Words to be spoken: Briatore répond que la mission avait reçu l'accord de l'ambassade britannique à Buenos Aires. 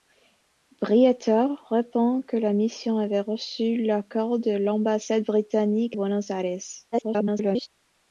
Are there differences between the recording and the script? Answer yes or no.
yes